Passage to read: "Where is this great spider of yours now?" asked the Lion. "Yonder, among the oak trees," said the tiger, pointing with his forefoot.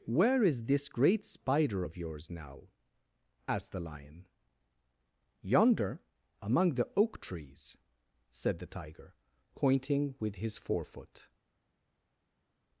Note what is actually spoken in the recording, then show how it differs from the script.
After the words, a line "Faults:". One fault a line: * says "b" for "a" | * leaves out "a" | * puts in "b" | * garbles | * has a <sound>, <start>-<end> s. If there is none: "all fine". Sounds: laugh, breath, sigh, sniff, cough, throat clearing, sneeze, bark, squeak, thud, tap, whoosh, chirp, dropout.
"Where is this great spider of yours now?" asked the Lion. "Yonder, among the oak trees," said the tiger, pointing with his forefoot.
Faults:
all fine